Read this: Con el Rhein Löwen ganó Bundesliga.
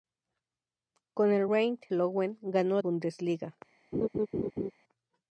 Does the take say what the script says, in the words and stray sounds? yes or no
no